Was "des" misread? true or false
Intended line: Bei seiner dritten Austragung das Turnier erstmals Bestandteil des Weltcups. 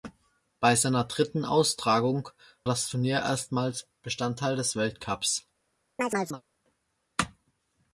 false